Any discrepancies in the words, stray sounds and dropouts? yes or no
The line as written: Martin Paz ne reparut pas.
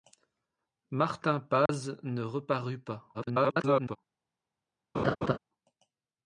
yes